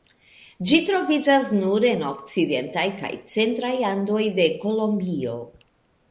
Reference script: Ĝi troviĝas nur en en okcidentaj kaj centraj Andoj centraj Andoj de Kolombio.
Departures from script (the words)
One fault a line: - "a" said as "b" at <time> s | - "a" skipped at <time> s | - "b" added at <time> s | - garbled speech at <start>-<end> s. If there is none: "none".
- "en" skipped at 2.0 s
- "centraj Andoj" skipped at 4.2 s